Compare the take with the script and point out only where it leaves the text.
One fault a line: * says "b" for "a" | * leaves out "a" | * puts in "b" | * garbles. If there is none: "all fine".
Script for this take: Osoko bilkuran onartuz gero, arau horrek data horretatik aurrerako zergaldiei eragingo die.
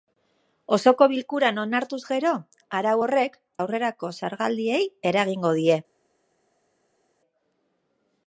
* leaves out "data horretatik"